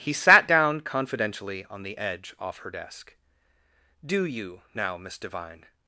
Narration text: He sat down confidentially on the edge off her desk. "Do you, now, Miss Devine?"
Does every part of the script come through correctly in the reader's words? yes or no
yes